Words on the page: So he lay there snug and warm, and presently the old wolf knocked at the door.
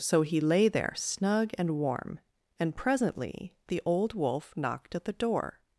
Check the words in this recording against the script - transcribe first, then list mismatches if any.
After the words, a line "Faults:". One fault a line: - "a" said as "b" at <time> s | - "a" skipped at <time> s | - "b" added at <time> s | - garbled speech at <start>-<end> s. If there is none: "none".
So he lay there snug and warm, and presently the old wolf knocked at the door.
Faults:
none